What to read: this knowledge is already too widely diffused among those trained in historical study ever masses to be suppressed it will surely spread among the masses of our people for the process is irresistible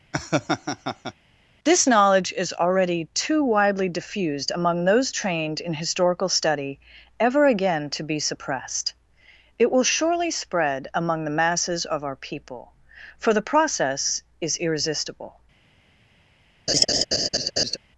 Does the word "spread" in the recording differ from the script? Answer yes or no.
no